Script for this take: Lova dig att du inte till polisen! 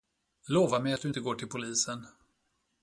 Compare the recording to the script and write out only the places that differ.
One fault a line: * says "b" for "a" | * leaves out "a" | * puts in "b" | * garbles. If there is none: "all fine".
* says "mig" for "dig"
* puts in "går"